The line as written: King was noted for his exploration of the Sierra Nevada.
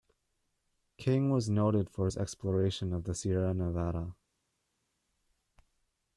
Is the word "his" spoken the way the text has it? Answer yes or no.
yes